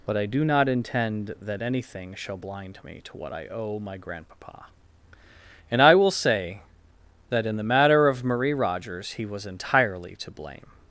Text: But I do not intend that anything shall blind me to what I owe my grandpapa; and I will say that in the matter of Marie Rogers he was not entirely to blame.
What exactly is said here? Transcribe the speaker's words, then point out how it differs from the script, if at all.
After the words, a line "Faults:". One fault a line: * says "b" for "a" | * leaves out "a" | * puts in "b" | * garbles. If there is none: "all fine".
But I do not intend that anything shall blind me to what I owe my grandpapa; and I will say that in the matter of Marie Rogers he was entirely to blame.
Faults:
* leaves out "not"